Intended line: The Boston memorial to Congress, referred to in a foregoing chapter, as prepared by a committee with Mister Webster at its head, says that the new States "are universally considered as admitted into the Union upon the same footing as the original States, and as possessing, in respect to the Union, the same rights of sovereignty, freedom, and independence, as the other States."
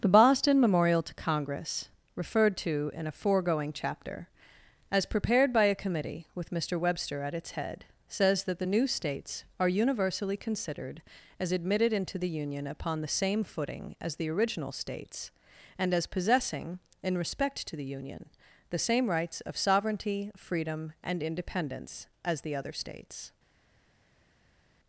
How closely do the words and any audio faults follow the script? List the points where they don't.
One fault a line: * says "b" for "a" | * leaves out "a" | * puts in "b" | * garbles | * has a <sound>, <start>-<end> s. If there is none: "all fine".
all fine